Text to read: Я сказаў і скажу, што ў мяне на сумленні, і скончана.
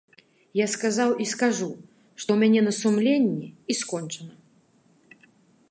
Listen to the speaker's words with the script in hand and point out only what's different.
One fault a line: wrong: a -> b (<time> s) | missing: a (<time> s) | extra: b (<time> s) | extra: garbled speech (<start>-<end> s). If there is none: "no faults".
no faults